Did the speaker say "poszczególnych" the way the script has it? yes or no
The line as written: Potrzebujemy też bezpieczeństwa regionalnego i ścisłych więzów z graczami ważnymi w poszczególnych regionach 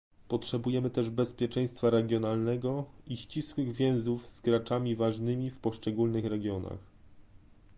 yes